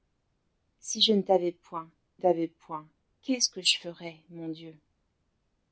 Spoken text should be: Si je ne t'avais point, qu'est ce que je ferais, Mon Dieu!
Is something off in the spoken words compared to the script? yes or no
yes